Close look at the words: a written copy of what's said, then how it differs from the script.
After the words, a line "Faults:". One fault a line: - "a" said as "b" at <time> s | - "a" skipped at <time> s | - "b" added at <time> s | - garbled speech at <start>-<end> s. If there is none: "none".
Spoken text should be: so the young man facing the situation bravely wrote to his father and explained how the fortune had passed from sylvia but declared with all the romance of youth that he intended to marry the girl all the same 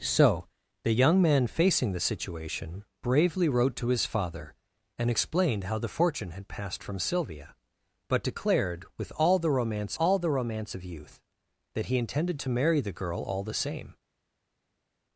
so the young man facing the situation bravely wrote to his father and explained how the fortune had passed from sylvia but declared with all the romance all the romance of youth that he intended to marry the girl all the same
Faults:
- "all the romance" added at 10.0 s